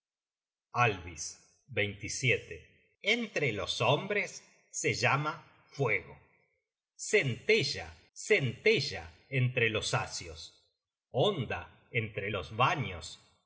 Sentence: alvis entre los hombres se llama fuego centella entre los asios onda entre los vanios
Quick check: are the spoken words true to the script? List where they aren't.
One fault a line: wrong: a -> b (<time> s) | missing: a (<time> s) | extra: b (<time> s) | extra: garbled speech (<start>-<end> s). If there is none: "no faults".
extra: centella (8.1 s)